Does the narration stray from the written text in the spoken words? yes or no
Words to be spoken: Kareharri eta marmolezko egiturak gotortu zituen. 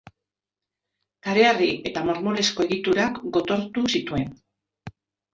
no